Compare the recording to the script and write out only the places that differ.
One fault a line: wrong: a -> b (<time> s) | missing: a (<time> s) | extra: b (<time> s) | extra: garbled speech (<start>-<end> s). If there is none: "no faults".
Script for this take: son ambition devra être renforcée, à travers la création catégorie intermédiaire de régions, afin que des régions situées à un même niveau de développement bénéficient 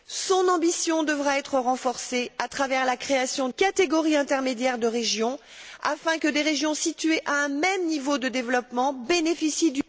no faults